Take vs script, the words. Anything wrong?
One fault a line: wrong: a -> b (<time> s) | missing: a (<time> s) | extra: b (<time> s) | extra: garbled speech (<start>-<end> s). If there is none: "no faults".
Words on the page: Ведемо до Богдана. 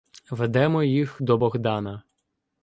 extra: їх (0.8 s)